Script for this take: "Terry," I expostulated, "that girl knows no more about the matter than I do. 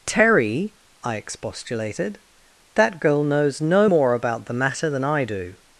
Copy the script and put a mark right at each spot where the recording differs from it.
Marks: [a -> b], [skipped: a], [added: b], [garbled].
"Terry," I expostulated, "that girl knows no more about the matter than I do.